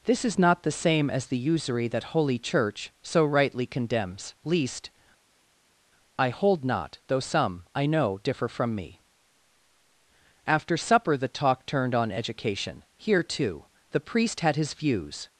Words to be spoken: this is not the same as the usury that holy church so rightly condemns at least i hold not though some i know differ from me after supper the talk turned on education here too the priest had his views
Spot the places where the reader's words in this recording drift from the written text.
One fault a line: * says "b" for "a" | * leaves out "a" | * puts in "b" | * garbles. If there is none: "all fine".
* leaves out "at"